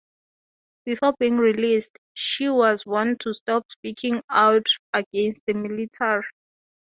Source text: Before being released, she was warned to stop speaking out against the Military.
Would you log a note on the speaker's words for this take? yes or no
no